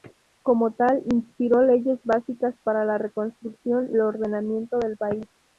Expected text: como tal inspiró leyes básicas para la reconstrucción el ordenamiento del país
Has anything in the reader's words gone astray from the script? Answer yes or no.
no